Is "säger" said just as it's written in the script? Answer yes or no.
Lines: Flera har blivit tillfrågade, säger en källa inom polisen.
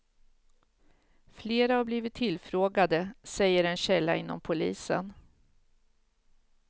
yes